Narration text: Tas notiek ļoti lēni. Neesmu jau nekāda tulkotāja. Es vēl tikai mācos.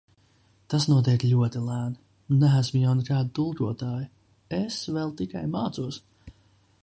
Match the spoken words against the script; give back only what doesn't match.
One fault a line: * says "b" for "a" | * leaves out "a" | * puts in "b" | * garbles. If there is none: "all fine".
all fine